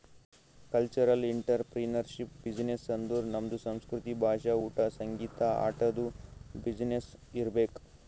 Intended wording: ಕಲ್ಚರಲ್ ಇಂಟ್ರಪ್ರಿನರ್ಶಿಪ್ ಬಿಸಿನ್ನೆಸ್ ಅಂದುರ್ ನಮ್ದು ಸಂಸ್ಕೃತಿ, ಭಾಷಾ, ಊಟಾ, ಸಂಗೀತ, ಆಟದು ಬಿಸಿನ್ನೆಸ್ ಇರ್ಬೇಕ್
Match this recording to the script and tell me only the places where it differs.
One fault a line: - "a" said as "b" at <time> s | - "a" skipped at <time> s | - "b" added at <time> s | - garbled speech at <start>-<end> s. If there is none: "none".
none